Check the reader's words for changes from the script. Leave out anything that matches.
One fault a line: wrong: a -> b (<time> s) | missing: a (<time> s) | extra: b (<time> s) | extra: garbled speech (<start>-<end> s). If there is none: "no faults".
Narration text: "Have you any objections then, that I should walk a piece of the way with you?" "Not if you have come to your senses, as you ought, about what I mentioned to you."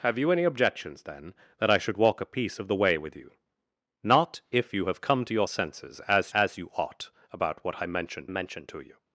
extra: as (6.3 s)
extra: mentioned (8.3 s)